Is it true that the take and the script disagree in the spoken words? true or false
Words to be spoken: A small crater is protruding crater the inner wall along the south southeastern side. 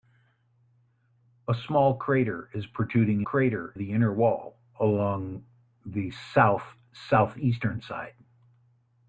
false